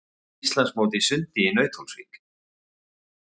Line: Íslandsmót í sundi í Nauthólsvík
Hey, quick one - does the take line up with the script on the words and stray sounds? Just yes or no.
yes